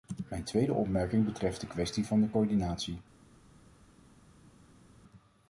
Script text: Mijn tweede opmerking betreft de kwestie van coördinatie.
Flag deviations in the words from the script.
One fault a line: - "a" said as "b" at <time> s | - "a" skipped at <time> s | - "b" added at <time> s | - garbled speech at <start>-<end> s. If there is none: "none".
- "de" added at 2.2 s